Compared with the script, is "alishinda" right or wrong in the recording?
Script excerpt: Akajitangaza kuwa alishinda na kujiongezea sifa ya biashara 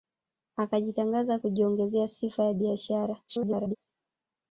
wrong